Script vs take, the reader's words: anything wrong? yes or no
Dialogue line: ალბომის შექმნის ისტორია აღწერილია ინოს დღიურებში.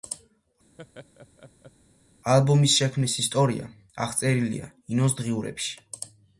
no